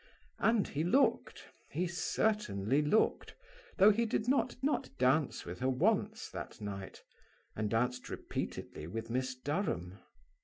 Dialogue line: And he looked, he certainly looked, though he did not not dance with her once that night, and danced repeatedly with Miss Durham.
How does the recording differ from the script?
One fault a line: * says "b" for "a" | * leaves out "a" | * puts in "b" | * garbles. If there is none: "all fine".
all fine